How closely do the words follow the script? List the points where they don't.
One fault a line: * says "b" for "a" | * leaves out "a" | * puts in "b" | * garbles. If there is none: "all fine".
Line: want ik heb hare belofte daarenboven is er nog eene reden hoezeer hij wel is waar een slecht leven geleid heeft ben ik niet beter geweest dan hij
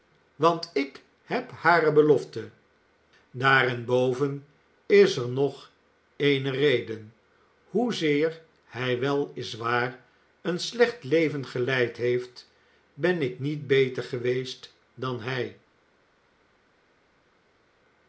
all fine